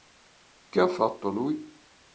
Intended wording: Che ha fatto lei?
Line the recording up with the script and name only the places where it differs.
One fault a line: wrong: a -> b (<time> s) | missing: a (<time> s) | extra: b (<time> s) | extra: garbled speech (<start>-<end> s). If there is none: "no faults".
wrong: lei -> lui (1.3 s)